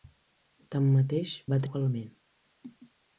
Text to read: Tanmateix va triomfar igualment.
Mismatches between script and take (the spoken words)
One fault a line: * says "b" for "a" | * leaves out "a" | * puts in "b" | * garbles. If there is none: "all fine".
* leaves out "triomfar"